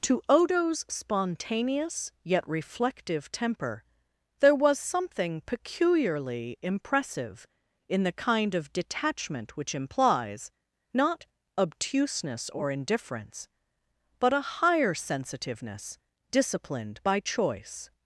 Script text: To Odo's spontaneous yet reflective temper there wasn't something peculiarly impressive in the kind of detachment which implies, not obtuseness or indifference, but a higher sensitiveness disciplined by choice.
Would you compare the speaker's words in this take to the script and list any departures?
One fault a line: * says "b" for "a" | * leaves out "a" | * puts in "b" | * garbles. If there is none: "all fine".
* says "was" for "wasn't"